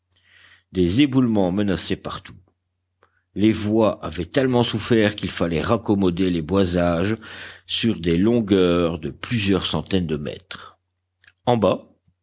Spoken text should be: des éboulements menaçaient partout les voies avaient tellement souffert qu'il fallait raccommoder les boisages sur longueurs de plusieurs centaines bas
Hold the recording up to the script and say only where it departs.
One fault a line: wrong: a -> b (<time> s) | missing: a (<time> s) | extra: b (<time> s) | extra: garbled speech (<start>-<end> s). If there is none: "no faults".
extra: des (8.0 s)
extra: de mètres en (10.1 s)